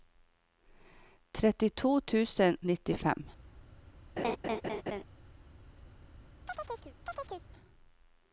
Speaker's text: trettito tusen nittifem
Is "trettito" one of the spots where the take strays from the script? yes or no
no